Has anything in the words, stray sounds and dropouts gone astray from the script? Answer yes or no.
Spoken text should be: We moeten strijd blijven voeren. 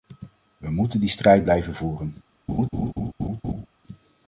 yes